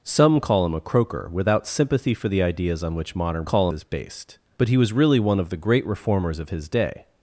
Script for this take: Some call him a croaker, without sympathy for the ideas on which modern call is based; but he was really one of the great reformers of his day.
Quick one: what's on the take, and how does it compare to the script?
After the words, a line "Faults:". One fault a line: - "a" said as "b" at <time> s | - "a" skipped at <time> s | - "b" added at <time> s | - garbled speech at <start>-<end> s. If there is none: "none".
Some call him a croaker, without sympathy for the ideas on which modern call is based; but he was really one of the great reformers of his day.
Faults:
none